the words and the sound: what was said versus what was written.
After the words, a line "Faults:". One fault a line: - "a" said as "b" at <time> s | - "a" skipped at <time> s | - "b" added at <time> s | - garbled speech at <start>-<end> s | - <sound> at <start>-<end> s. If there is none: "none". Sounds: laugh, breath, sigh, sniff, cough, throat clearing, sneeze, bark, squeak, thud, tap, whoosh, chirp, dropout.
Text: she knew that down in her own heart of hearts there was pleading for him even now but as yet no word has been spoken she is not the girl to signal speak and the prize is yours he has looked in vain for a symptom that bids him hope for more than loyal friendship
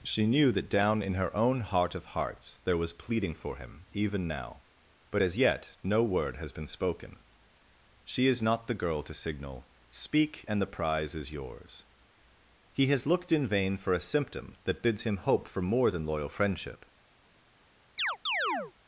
she knew that down in her own heart of hearts there was pleading for him even now but as yet no word has been spoken she is not the girl to signal speak and the prize is yours he has looked in vain for a symptom that bids him hope for more than loyal friendship
Faults:
- chirp at 18.0-18.7 s